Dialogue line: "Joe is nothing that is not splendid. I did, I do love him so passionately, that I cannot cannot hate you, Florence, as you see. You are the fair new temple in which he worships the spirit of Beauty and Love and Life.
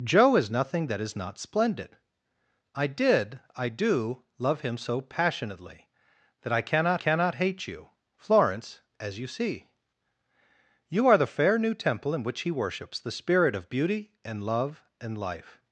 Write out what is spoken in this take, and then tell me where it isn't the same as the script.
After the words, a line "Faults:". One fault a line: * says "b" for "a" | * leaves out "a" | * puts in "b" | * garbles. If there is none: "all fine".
"Joe is nothing that is not splendid. I did, I do love him so passionately, that I cannot cannot hate you, Florence, as you see. You are the fair new temple in which he worships the spirit of Beauty and Love and Life.
Faults:
all fine